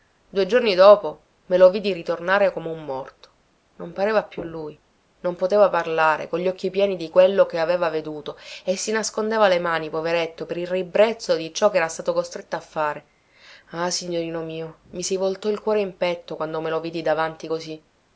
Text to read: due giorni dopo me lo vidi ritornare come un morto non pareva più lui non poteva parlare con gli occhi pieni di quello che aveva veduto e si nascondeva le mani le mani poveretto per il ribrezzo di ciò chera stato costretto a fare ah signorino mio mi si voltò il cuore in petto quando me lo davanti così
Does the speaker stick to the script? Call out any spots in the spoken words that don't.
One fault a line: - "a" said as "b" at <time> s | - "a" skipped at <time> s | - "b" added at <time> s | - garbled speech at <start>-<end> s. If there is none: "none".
- "le mani" skipped at 9.9 s
- "vidi" added at 16.8 s